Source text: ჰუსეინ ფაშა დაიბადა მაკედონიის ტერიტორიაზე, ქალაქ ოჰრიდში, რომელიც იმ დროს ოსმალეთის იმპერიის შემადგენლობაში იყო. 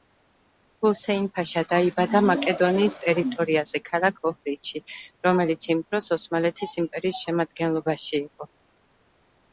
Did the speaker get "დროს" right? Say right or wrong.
right